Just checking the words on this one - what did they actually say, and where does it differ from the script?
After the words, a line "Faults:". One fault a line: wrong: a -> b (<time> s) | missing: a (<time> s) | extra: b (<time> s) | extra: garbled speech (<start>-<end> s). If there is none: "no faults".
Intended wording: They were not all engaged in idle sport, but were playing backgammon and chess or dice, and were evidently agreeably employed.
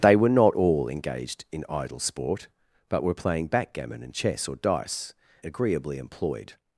They were not all engaged in idle sport, but were playing backgammon and chess or dice, agreeably employed.
Faults:
missing: and were evidently (5.1 s)